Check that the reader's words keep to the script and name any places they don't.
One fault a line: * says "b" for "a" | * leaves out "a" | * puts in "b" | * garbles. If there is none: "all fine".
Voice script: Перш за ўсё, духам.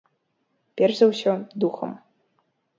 all fine